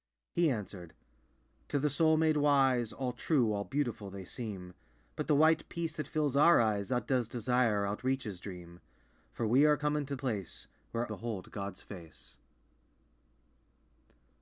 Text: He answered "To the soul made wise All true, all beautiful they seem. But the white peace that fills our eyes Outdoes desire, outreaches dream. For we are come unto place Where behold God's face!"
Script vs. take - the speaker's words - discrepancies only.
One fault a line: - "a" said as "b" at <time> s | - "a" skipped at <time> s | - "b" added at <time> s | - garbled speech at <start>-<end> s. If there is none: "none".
none